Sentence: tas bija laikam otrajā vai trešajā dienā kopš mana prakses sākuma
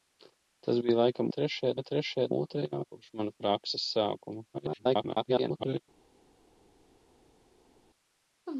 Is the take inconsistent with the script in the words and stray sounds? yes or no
yes